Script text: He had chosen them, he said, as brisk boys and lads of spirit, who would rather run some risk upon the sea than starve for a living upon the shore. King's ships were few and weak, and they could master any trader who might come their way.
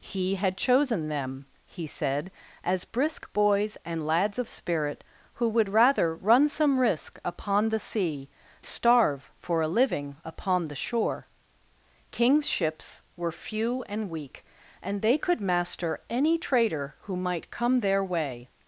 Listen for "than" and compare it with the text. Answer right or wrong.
wrong